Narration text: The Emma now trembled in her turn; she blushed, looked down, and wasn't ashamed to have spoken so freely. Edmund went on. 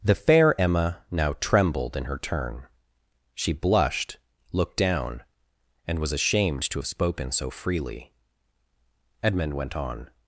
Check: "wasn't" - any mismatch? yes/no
yes